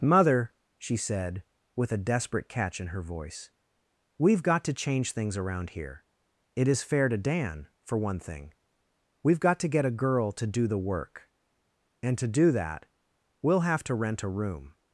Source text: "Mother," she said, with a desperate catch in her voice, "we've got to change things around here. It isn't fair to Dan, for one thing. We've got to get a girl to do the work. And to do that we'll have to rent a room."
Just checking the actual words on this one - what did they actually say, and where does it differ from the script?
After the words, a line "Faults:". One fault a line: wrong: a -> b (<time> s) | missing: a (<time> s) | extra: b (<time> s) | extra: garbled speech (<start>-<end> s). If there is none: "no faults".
"Mother," she said, with a desperate catch in her voice, "we've got to change things around here. It is fair to Dan, for one thing. We've got to get a girl to do the work. And to do that we'll have to rent a room."
Faults:
wrong: isn't -> is (6.7 s)